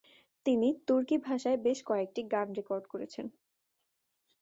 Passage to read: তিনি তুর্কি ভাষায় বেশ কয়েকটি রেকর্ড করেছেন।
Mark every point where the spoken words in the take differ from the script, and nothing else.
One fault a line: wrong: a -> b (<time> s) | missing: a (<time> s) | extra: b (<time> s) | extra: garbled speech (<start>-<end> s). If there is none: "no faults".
extra: গান (2.3 s)